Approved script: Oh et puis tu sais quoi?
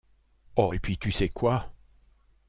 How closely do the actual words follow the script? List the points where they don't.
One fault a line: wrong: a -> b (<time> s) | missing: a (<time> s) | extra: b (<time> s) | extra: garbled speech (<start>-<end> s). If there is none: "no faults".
no faults